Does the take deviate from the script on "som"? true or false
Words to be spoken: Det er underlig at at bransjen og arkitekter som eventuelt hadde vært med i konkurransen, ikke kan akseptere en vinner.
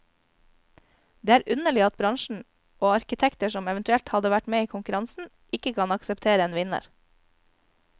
false